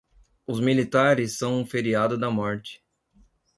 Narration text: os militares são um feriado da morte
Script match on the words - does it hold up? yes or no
yes